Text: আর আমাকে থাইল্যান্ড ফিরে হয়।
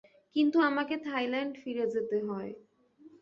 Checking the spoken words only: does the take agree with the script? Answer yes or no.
no